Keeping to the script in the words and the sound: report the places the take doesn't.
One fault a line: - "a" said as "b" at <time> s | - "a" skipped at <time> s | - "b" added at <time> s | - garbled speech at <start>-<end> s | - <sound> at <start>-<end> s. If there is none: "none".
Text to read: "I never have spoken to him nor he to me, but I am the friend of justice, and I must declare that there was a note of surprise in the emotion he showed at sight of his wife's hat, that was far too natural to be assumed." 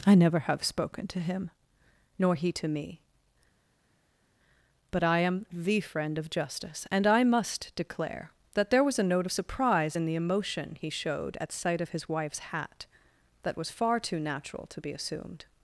none